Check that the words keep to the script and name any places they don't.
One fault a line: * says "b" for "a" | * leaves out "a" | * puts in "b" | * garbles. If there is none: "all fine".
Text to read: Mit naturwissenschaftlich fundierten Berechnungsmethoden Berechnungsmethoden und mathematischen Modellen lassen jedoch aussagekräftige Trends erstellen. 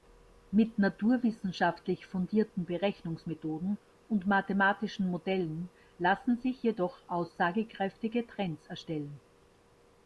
* leaves out "Berechnungsmethoden"
* puts in "sich"